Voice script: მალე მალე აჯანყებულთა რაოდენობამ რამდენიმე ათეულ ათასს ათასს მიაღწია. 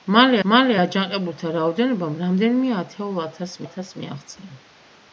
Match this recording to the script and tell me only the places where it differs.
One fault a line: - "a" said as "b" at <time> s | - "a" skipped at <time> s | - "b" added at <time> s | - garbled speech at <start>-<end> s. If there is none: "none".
none